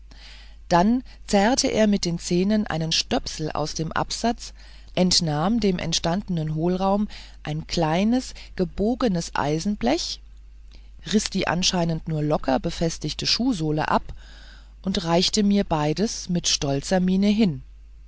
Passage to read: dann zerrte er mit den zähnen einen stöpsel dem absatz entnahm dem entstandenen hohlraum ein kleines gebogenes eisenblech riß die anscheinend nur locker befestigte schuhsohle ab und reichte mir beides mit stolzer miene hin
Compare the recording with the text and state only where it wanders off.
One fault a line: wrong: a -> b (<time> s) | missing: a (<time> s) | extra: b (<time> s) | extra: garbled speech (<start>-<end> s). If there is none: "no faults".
extra: aus (3.5 s)